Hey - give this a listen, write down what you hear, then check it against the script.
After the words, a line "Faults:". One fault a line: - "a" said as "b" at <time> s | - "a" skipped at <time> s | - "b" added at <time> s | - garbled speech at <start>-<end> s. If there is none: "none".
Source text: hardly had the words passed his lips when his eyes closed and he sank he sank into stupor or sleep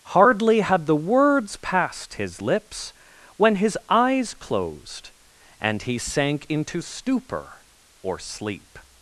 hardly had the words passed his lips when his eyes closed and he sank into stupor or sleep
Faults:
- "he sank" skipped at 6.5 s